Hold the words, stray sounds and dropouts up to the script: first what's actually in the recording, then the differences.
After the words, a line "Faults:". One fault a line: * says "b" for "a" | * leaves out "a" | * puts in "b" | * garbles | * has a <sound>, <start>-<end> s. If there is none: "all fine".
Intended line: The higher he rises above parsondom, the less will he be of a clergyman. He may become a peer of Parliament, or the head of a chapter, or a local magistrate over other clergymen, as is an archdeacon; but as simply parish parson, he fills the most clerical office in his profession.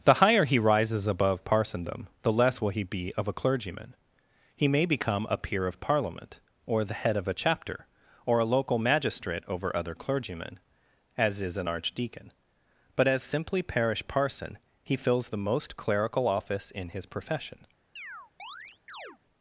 The higher he rises above parsondom, the less will he be of a clergyman. He may become a peer of Parliament, or the head of a chapter, or a local magistrate over other clergymen, as is an archdeacon; but as simply parish parson, he fills the most clerical office in his profession.
Faults:
* has a chirp, 18.0-19.2 s